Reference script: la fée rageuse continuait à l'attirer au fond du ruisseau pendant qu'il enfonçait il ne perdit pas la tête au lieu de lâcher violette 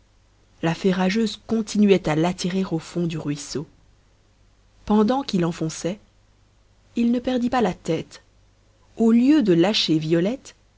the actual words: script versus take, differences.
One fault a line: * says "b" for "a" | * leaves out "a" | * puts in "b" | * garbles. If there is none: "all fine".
all fine